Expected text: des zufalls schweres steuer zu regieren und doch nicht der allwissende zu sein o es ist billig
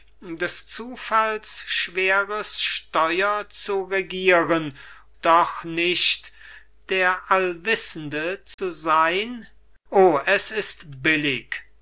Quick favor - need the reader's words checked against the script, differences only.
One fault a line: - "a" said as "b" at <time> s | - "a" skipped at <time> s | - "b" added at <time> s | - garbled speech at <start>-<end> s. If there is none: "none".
- "und" skipped at 4.7 s